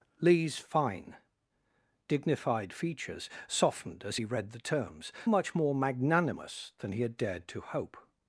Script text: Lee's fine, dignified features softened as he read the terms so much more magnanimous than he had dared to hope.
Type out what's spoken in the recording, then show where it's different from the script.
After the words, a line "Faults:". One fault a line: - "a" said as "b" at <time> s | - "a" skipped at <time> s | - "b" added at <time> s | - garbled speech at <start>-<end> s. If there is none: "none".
Lee's fine, dignified features softened as he read the terms much more magnanimous than he had dared to hope.
Faults:
- "so" skipped at 5.1 s